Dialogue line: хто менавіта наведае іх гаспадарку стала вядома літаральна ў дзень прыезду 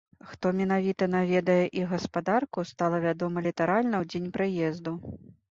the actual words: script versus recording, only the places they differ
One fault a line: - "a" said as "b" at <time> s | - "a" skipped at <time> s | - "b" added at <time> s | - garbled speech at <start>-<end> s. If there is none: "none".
none